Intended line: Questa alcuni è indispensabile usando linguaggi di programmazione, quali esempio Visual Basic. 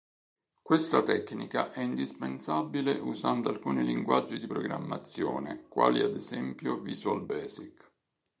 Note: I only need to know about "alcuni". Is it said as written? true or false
false